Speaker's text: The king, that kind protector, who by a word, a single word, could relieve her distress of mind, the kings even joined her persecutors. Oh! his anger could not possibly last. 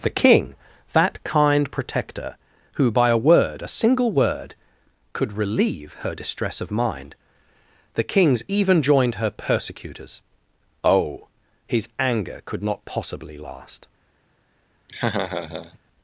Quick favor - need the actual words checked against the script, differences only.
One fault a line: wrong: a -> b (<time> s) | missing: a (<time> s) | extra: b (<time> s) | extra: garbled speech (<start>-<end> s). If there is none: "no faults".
no faults